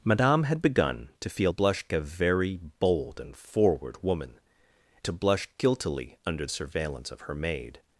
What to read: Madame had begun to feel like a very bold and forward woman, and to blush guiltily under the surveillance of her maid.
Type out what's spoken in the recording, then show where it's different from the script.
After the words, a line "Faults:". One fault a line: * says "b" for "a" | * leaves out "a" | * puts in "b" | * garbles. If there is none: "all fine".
Madame had begun to feel blush a very bold and forward woman, to blush guiltily under surveillance of her maid.
Faults:
* says "blush" for "like"
* leaves out "and"
* leaves out "the"